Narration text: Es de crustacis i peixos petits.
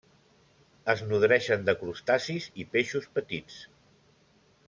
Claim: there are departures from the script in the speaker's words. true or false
true